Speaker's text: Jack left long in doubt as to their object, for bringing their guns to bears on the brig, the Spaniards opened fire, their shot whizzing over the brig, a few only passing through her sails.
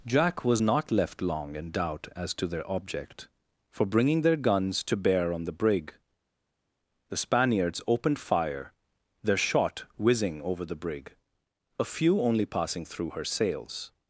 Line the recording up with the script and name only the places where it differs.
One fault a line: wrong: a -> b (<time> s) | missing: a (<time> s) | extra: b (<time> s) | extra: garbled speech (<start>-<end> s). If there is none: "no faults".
extra: was not (0.4 s)
wrong: bears -> bear (4.9 s)